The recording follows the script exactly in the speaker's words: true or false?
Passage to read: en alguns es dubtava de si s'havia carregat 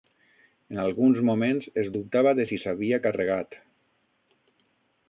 false